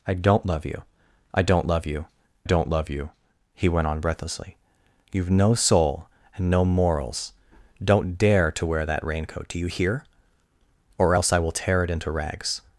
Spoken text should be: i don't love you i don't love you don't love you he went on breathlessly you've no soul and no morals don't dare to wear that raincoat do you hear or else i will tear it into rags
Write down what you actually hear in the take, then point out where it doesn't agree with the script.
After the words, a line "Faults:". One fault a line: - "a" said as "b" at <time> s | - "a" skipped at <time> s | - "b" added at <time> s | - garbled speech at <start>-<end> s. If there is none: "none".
i don't love you i don't love you don't love you he went on breathlessly you've no soul and no morals don't dare to wear that raincoat do you hear or else i will tear it into rags
Faults:
none